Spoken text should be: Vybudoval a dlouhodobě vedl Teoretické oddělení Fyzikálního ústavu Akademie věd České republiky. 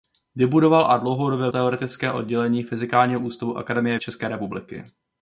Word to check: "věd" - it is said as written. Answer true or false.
false